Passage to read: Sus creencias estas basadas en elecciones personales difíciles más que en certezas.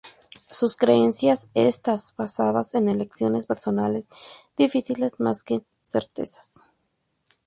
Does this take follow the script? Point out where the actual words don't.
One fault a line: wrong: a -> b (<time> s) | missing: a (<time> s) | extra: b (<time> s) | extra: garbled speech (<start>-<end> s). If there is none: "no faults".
no faults